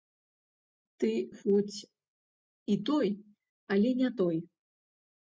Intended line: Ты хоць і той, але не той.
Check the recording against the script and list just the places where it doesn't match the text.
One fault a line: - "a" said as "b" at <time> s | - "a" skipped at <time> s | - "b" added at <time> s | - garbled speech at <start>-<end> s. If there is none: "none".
none